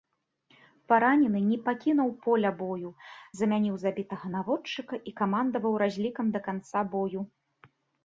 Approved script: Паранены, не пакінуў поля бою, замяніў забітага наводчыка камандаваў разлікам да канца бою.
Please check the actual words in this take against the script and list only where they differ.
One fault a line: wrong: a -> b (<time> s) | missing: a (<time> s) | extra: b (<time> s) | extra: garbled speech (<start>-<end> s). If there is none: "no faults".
extra: і (5.1 s)